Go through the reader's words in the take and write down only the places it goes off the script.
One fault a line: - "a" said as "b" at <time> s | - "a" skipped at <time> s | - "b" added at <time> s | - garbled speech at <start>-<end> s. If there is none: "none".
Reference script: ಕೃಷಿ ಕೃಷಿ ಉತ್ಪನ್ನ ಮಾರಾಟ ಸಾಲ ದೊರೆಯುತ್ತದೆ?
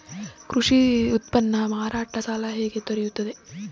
- "ಕೃಷಿ" skipped at 1.1 s
- "ಹೇಗೆ" added at 2.5 s